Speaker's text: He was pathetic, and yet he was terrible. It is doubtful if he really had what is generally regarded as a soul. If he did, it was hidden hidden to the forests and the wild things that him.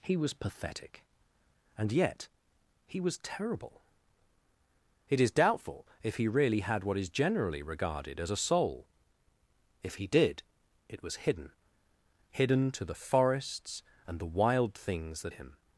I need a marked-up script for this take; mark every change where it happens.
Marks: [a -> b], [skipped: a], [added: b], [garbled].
He was pathetic, and yet he was terrible. It is doubtful if he really had what is generally regarded as a soul. If he did, it was hidden hidden to the forests and the wild things that him.